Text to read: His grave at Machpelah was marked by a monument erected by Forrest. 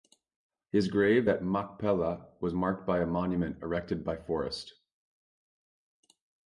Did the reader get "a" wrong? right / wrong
right